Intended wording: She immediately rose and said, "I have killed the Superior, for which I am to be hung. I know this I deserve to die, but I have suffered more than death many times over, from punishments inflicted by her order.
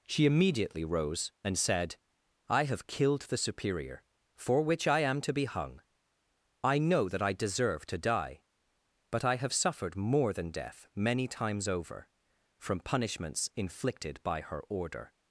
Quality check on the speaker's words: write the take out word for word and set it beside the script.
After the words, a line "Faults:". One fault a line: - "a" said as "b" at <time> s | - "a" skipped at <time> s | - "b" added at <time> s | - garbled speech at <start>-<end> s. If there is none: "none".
She immediately rose and said, "I have killed the Superior, for which I am to be hung. I know that I deserve to die, but I have suffered more than death many times over, from punishments inflicted by her order.
Faults:
- "this" said as "that" at 7.1 s